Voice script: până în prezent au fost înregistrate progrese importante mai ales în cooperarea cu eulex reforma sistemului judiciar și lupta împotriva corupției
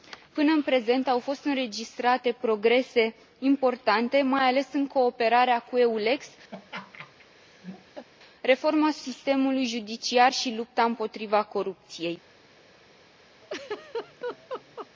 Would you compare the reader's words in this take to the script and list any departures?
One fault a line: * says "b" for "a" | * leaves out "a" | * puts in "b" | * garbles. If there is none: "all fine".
all fine